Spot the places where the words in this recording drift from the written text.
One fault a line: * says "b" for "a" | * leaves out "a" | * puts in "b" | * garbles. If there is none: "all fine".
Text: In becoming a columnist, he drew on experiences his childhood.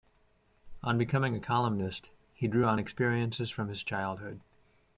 * says "On" for "In"
* puts in "from"